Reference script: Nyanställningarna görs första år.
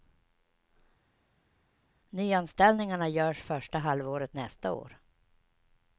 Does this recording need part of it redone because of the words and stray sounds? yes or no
yes